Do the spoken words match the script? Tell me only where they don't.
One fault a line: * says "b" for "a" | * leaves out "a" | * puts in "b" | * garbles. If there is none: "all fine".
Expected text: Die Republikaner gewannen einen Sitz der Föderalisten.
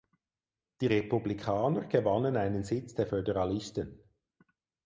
all fine